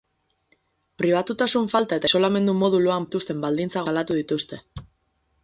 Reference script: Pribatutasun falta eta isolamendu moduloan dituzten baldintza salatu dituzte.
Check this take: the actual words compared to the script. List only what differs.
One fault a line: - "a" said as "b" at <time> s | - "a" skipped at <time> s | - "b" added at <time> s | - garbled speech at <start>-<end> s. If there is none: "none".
none